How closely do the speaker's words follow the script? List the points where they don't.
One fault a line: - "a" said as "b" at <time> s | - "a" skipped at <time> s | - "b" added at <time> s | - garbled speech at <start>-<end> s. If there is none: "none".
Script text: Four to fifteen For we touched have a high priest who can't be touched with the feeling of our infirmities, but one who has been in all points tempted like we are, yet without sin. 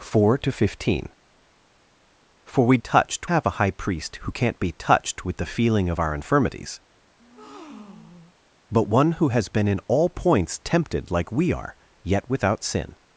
none